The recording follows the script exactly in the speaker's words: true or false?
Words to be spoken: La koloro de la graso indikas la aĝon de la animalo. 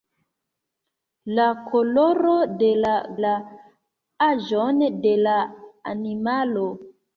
false